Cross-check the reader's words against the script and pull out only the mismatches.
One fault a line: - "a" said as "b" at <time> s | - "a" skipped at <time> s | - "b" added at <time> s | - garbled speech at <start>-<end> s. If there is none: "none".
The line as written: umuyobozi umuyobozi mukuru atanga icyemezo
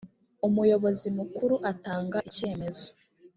- "umuyobozi" skipped at 1.1 s